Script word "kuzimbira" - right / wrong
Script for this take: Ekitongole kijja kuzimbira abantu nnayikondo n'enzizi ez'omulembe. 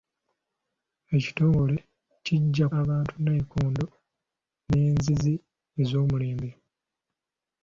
wrong